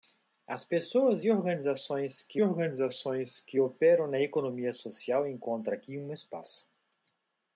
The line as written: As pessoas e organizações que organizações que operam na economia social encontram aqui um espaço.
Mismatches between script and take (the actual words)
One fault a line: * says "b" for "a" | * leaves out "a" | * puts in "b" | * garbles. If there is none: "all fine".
all fine